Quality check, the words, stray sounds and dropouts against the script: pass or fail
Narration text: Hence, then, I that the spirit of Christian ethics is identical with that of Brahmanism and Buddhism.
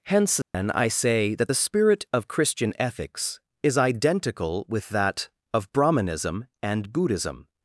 fail